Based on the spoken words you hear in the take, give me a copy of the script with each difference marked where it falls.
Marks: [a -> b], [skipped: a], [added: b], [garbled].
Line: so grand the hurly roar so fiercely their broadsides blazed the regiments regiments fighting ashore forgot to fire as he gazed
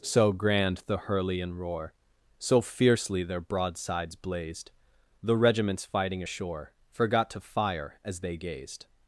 so grand the hurly [added: and] roar so fiercely their broadsides blazed the regiments [skipped: regiments] fighting ashore forgot to fire as [he -> they] gazed